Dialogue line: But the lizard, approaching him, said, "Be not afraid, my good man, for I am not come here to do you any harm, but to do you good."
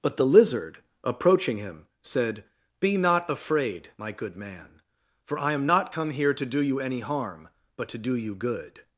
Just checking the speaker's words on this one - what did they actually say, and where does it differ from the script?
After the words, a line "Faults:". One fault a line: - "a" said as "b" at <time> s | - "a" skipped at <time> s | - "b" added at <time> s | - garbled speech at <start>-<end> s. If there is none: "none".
But the lizard, approaching him, said, "Be not afraid, my good man, for I am not come here to do you any harm, but to do you good."
Faults:
none